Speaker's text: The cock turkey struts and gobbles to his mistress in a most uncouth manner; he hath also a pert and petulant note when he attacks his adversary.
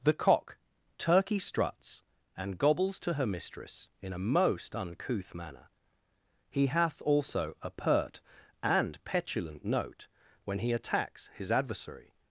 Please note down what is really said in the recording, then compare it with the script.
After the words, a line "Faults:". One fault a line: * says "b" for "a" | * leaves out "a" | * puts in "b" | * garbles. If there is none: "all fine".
The cock turkey struts and gobbles to her mistress in a most uncouth manner; he hath also a pert and petulant note when he attacks his adversary.
Faults:
* says "her" for "his"